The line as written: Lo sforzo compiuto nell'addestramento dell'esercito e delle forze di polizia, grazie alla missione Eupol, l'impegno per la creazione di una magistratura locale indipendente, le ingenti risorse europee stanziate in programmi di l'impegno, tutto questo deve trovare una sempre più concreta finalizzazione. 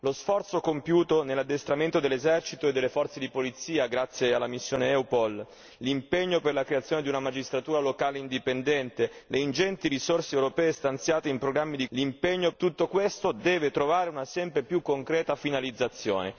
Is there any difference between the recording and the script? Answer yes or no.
no